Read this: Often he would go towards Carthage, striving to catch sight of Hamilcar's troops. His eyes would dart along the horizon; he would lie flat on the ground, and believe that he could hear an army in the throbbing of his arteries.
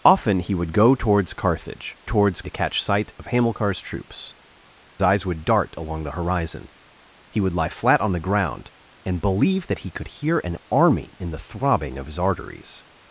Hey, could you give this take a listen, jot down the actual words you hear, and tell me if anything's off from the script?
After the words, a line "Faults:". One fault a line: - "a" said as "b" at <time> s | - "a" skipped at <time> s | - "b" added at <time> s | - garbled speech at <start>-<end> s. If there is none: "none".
Often he would go towards Carthage, towards to catch sight of Hamilcar's troops. Eyes would dart along the horizon; he would lie flat on the ground, and believe that he could hear an army in the throbbing of his arteries.
Faults:
- "striving" said as "towards" at 2.0 s
- "His" skipped at 4.3 s